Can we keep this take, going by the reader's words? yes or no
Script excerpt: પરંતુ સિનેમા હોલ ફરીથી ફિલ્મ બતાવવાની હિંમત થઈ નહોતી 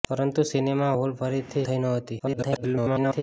no